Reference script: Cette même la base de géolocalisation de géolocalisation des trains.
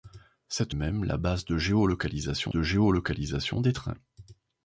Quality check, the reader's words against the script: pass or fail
pass